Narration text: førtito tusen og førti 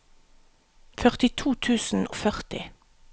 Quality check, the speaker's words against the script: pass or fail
pass